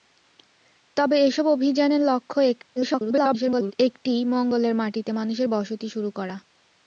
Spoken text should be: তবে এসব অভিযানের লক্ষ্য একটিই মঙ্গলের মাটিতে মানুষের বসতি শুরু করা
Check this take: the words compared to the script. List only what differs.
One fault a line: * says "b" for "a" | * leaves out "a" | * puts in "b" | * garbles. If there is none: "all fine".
* garbles